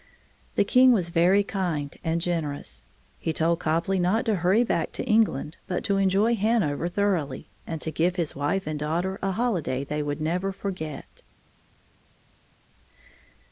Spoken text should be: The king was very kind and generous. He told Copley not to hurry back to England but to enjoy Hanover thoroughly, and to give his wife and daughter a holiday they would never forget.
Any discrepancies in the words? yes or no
no